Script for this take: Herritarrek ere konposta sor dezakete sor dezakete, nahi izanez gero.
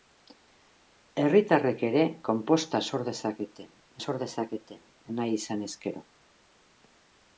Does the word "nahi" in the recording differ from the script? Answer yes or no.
no